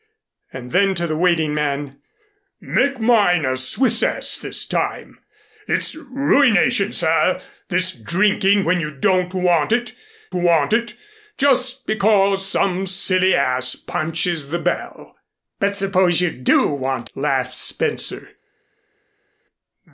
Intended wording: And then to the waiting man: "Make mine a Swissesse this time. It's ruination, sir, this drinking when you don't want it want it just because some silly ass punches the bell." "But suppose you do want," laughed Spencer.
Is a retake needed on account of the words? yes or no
no